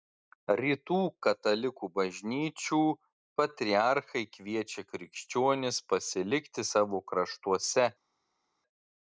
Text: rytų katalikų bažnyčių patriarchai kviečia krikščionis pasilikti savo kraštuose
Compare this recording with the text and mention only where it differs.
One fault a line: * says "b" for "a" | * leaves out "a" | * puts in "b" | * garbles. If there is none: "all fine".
all fine